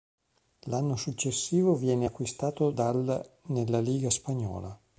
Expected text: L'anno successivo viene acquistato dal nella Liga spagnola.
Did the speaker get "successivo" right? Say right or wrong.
right